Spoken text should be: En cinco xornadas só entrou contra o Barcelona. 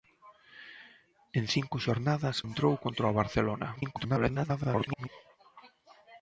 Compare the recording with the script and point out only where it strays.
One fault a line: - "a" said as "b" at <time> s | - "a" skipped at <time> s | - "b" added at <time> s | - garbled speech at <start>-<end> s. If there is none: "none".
- "só" skipped at 2.4 s
- garbled speech at 3.8-5.1 s